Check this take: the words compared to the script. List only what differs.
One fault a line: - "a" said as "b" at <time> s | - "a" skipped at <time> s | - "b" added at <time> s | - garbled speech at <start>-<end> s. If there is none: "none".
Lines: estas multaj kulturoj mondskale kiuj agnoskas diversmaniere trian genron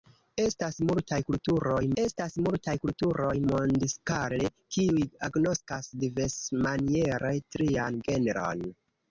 - "estas multaj kulturoj" added at 2.0 s